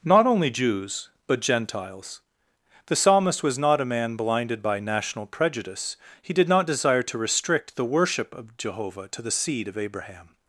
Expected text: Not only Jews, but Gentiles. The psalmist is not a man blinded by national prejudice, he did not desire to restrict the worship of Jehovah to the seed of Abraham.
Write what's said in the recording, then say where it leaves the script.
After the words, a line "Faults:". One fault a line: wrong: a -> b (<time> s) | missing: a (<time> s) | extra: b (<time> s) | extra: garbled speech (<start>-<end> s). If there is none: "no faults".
Not only Jews, but Gentiles. The psalmist was not a man blinded by national prejudice, he did not desire to restrict the worship of Jehovah to the seed of Abraham.
Faults:
wrong: is -> was (3.4 s)